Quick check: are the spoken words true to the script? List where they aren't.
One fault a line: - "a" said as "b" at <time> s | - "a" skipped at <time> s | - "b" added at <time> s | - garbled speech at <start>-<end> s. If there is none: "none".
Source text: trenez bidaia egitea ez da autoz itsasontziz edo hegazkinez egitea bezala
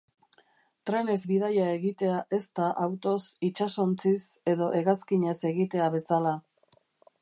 none